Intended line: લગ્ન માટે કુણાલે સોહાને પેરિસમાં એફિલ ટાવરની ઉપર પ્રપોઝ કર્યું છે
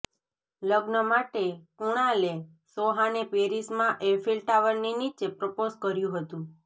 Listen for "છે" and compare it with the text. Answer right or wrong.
wrong